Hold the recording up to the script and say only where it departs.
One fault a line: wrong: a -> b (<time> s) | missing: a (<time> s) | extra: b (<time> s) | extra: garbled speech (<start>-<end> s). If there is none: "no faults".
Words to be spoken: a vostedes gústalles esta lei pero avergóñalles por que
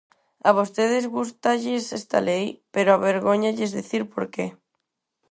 extra: dicir (3.8 s)